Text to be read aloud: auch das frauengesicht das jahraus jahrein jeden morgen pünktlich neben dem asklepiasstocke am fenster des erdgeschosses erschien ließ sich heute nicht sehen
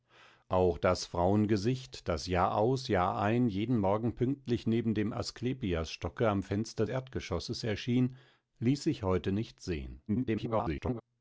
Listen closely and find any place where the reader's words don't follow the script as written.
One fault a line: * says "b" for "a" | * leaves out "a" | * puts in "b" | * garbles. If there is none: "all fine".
* leaves out "des"
* garbles